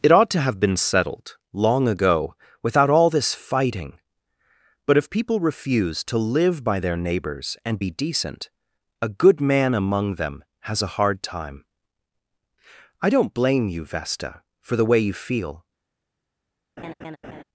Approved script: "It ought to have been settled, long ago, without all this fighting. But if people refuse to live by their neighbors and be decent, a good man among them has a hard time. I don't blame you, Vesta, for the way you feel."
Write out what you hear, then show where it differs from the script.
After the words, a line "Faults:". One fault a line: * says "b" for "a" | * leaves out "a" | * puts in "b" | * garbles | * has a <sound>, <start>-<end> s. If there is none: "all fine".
"It ought to have been settled, long ago, without all this fighting. But if people refuse to live by their neighbors and be decent, a good man among them has a hard time. I don't blame you, Vesta, for the way you feel."
Faults:
* has a laugh, 16.8-17.4 s